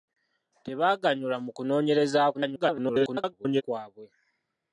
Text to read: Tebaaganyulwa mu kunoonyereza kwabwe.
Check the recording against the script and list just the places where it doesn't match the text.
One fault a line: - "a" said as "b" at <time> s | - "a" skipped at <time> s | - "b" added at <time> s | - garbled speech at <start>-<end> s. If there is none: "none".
- garbled speech at 2.3-3.6 s